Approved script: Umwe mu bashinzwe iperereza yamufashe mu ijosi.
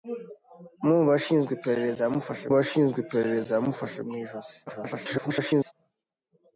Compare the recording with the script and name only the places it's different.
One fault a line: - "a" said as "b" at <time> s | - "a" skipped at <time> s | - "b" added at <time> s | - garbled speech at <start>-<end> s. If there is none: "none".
- "bashinzwe iperereza yamufashe" added at 2.6 s
- garbled speech at 4.7-5.7 s